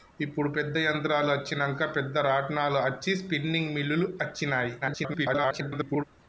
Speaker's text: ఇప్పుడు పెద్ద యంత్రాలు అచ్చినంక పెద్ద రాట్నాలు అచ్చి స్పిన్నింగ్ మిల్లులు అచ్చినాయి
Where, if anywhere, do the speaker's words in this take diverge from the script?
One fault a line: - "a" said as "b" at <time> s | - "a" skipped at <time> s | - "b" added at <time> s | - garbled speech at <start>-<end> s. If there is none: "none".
- garbled speech at 4.8-6.0 s